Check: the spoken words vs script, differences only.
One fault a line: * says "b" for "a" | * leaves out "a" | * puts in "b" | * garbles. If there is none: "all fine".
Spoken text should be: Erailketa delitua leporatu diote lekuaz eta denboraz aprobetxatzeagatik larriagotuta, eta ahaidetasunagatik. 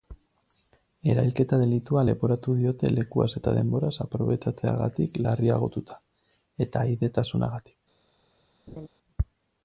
all fine